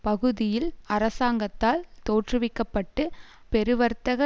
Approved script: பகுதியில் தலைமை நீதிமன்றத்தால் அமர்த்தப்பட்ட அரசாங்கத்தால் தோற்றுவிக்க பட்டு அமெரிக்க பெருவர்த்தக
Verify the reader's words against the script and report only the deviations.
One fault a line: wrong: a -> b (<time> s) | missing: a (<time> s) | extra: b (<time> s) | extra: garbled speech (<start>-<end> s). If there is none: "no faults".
missing: தலைமை நீதிமன்றத்தால் அமர்த்தப்பட்ட (0.7 s)
missing: அமெரிக்க (3.0 s)